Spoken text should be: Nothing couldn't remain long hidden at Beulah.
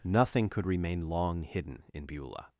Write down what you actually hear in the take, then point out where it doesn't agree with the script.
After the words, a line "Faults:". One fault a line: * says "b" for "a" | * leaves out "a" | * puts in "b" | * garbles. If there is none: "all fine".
Nothing could remain long hidden in Beulah.
Faults:
* says "could" for "couldn't"
* says "in" for "at"